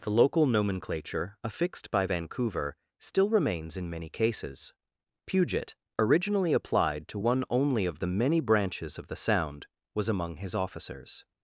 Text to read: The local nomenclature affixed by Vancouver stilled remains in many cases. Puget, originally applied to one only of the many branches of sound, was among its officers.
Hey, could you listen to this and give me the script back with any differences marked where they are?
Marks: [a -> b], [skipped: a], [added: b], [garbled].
The local nomenclature affixed by Vancouver [stilled -> still] remains in many cases. Puget, originally applied to one only of the many branches of [added: the] sound, was among [its -> his] officers.